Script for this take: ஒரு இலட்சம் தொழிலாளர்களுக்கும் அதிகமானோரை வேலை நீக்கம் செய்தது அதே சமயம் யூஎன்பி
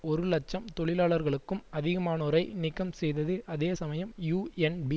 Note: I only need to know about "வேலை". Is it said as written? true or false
false